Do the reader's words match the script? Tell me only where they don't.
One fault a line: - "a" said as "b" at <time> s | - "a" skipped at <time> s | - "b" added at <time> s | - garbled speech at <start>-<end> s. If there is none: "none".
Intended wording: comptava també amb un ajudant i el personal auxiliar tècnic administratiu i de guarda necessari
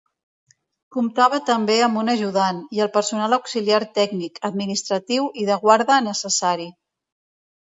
none